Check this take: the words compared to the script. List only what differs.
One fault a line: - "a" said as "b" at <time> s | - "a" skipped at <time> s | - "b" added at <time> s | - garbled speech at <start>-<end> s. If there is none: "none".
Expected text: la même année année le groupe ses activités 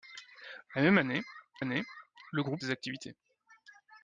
none